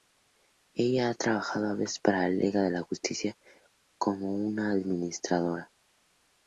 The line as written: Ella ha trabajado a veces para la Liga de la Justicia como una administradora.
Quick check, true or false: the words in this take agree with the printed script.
true